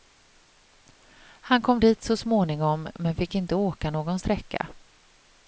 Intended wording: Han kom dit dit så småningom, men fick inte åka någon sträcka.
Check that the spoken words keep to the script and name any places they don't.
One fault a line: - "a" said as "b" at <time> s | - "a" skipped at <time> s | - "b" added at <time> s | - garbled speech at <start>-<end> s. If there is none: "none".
- "dit" skipped at 2.0 s